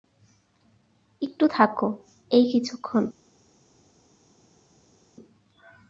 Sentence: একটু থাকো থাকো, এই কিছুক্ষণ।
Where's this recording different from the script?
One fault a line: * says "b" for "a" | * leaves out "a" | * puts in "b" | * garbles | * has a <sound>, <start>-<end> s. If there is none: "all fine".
* leaves out "থাকো"